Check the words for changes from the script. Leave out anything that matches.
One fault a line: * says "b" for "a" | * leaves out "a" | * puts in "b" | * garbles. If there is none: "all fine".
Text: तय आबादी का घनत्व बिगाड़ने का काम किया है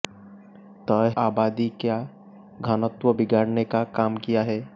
all fine